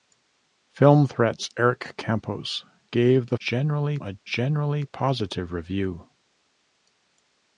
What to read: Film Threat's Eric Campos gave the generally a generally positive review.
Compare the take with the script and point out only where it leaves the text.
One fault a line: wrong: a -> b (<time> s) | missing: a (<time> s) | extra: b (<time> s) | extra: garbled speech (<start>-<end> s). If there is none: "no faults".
no faults